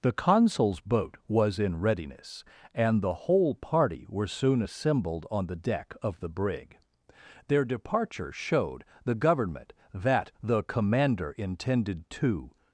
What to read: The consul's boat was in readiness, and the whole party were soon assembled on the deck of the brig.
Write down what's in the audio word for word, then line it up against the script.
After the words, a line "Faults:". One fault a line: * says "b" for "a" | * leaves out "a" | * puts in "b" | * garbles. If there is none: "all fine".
The consul's boat was in readiness, and the whole party were soon assembled on the deck of the brig. Their departure showed the government that the commander intended to
Faults:
* puts in "Their departure showed the government that the commander intended to"